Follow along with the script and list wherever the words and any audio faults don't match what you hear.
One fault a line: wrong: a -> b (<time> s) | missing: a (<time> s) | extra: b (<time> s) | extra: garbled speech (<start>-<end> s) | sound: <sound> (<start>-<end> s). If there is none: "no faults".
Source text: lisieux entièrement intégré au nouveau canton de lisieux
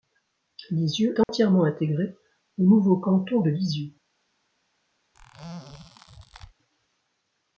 sound: dropout (1.2-1.3 s)
sound: squeak (5.1-6.5 s)